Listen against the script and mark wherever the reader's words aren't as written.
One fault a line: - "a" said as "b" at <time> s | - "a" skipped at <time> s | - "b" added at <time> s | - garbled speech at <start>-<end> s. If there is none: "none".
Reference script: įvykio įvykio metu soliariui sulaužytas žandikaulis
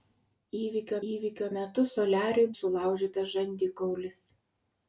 none